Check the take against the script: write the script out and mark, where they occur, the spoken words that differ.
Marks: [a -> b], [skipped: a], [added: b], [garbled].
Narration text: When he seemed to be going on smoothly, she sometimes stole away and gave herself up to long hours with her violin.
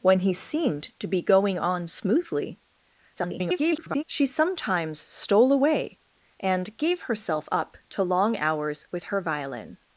When he seemed to be going on smoothly, [garbled] she sometimes stole away and gave herself up to long hours with her violin.